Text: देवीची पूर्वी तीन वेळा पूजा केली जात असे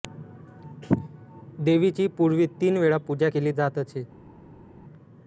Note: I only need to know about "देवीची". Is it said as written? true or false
true